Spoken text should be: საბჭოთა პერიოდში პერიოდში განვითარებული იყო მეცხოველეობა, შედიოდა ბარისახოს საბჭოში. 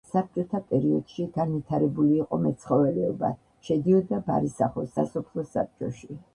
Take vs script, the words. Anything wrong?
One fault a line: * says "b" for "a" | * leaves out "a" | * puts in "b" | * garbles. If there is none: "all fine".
* leaves out "პერიოდში"
* puts in "სასოფლო"